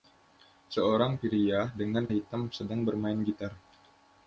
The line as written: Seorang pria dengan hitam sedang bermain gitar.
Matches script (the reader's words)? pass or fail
pass